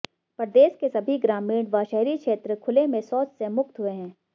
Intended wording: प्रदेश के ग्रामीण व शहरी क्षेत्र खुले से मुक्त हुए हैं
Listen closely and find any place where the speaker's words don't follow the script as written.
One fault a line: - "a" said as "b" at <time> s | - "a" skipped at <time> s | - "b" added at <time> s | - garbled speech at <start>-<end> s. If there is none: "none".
- "सभी" added at 0.9 s
- "में शौच" added at 2.9 s